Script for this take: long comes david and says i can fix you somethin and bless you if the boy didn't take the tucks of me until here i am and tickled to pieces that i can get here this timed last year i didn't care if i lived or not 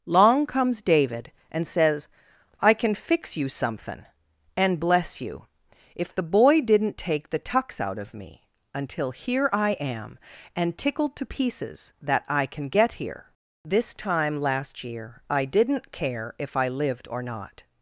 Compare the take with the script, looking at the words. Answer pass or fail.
fail